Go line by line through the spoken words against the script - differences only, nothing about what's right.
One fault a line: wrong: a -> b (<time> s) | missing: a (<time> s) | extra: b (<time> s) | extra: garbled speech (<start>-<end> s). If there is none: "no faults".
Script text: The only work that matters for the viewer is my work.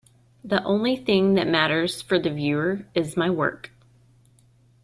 wrong: work -> thing (0.9 s)